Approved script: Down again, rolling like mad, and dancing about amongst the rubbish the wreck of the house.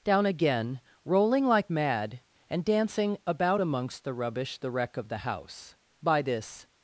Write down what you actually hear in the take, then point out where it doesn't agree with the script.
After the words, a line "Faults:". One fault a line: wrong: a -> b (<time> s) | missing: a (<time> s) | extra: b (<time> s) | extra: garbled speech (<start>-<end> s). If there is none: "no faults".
Down again, rolling like mad, and dancing about amongst the rubbish the wreck of the house. By this
Faults:
extra: By this (6.0 s)